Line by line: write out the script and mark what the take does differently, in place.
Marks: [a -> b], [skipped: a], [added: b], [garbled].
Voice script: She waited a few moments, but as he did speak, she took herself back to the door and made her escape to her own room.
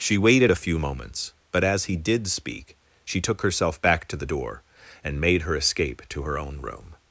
She waited a few moments, but as he did speak, she took herself back to the door and made her escape to her own room.